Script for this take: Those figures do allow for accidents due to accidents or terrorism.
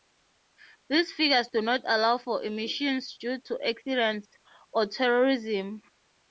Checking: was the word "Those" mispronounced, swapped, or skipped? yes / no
yes